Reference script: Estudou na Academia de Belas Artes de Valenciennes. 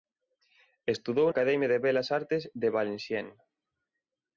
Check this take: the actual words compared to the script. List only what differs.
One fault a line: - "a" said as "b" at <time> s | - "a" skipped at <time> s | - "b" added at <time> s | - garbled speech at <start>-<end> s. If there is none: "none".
- "na" skipped at 1.3 s